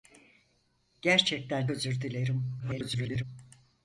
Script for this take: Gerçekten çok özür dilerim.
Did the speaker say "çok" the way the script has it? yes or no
no